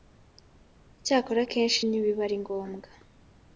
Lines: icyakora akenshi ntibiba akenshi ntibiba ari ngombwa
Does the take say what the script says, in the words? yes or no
no